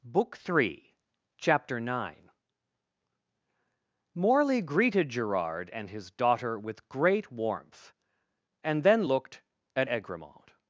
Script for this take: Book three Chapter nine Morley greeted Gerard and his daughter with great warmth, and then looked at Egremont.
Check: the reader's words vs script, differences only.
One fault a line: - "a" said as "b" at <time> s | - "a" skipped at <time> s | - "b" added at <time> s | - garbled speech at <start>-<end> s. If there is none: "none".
none